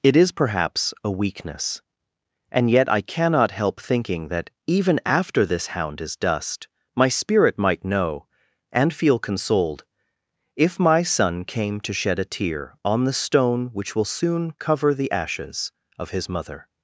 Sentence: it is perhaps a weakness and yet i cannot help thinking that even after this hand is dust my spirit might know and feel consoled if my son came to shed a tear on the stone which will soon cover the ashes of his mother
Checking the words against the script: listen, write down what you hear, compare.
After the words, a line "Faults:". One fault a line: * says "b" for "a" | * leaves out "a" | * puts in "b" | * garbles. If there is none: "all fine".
it is perhaps a weakness and yet i cannot help thinking that even after this hound is dust my spirit might know and feel consoled if my son came to shed a tear on the stone which will soon cover the ashes of his mother
Faults:
* says "hound" for "hand"